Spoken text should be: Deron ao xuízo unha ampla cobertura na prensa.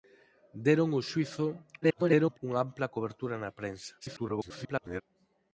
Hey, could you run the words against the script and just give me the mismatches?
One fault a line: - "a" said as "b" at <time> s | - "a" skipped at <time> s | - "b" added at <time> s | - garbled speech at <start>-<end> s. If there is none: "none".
- garbled speech at 1.8-2.4 s
- garbled speech at 4.0-5.0 s